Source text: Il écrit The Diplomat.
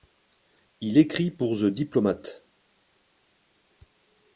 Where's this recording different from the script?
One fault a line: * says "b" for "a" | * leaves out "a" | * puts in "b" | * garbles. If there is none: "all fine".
* puts in "pour"